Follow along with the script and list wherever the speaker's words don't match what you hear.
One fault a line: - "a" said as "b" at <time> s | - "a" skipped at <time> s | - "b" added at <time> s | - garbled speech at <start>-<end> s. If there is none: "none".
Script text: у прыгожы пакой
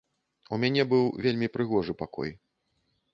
- "мяне быў вельмі" added at 0.6 s